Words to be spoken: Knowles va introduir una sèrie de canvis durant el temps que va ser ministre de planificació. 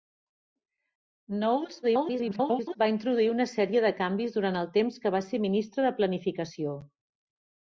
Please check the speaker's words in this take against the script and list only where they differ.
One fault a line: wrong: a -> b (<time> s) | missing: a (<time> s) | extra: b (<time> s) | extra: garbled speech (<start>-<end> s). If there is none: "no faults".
extra: garbled speech (1.8-2.8 s)